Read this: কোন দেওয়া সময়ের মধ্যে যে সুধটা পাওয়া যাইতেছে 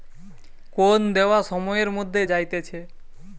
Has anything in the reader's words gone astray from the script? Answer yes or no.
yes